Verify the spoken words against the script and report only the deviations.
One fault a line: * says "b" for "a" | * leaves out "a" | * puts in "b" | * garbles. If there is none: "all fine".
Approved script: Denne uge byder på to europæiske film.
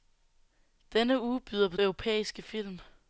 * leaves out "to"